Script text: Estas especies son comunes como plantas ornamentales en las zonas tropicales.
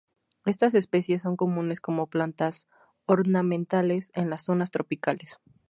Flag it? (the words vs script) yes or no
no